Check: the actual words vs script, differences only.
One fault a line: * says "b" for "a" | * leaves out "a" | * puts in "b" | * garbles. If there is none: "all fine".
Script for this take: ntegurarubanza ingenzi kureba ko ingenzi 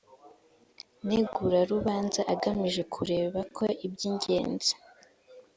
* says "agamije" for "ingenzi"
* puts in "iby"